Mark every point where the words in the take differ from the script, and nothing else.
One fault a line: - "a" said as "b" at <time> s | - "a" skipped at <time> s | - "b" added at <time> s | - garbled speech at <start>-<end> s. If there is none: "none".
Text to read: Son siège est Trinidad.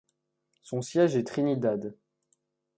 none